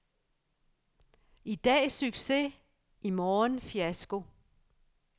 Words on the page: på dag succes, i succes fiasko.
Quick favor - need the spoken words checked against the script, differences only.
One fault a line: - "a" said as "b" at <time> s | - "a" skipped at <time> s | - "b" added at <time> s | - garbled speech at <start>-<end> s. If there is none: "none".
- "på" said as "I" at 1.4 s
- "succes" said as "morgen" at 3.1 s